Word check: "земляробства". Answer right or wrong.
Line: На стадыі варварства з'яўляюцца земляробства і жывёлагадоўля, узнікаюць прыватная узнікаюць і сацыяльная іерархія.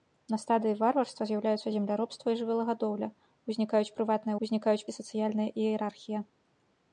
right